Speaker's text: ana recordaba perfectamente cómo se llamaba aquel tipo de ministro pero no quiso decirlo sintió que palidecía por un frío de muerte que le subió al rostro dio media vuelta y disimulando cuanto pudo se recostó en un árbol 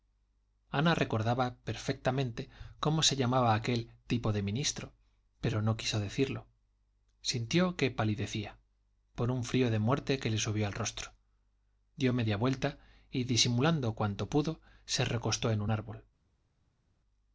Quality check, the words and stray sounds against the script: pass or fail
pass